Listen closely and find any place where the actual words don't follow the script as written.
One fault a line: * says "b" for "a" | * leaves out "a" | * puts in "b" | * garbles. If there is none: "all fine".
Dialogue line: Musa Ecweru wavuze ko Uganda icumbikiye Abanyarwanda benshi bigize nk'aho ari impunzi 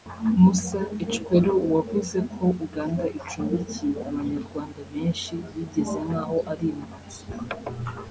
all fine